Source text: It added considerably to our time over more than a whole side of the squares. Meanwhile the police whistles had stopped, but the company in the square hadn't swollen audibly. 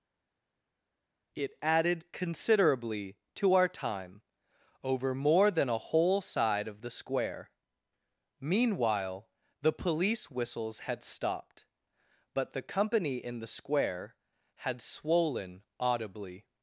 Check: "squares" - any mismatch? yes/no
yes